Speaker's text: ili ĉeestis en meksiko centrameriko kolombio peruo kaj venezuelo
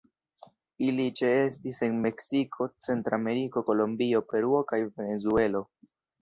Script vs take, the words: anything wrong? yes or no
no